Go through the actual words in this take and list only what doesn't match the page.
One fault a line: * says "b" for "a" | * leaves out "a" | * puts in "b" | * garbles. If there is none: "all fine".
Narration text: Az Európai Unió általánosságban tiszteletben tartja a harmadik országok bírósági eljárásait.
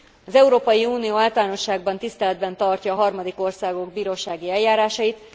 all fine